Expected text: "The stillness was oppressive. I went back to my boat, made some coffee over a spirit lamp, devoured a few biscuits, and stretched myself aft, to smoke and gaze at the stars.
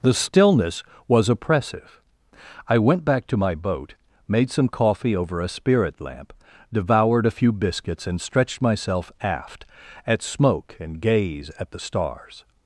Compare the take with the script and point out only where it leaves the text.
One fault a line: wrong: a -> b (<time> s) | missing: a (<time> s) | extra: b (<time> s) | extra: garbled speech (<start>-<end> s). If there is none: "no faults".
wrong: to -> at (10.1 s)